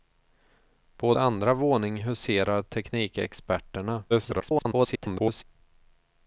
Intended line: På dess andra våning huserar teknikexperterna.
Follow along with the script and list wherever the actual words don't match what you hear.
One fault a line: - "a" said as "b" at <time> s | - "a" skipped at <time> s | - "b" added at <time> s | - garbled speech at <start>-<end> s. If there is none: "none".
- "dess" skipped at 1.1 s
- garbled speech at 4.1-5.4 s